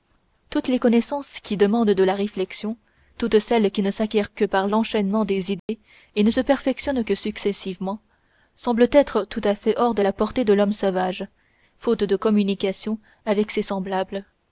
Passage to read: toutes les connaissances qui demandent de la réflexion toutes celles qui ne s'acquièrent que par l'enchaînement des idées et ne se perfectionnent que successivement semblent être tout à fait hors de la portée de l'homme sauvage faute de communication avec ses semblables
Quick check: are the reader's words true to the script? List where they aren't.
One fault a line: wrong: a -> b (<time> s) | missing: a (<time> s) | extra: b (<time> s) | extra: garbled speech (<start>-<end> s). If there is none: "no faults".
no faults